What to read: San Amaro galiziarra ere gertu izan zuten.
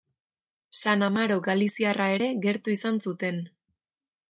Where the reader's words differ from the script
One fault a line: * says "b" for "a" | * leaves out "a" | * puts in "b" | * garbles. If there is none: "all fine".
all fine